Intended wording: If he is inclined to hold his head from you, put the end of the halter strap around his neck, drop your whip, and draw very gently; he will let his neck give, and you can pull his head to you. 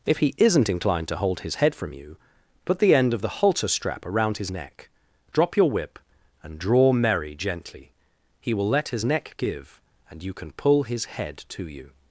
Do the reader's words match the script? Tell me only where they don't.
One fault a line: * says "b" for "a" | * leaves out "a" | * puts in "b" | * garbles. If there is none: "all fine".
* says "isn't" for "is"
* says "merry" for "very"